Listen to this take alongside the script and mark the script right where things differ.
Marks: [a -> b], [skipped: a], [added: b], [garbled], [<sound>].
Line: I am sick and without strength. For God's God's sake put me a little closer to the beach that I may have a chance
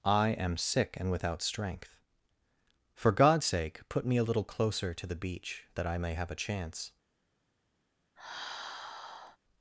I am sick and without strength. For God's [skipped: God's] sake put me a little closer to the beach that I may have a chance [sigh]